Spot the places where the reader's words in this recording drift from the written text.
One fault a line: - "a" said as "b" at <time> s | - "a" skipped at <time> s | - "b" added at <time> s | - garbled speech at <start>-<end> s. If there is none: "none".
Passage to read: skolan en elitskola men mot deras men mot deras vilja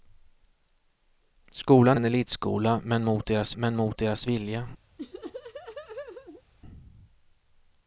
none